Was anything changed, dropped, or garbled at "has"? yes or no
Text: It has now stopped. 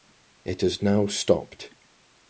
no